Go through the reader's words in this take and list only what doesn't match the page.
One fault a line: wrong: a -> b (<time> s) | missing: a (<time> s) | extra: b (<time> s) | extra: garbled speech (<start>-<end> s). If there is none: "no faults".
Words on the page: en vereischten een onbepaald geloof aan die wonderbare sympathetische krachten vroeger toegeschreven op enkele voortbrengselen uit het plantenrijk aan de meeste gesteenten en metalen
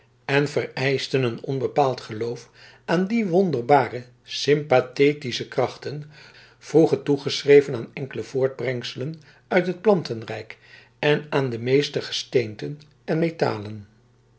wrong: op -> aan (7.8 s)
extra: en (11.0 s)